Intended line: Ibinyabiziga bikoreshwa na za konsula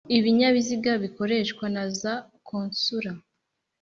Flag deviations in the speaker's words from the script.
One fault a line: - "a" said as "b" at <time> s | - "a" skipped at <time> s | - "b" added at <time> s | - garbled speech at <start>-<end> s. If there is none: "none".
none